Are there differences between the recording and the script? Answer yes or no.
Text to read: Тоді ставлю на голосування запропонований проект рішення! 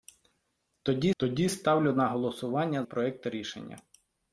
yes